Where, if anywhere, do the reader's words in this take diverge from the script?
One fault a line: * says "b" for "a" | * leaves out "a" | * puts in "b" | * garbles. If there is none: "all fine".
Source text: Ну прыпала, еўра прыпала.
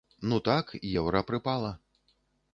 * says "так" for "прыпала"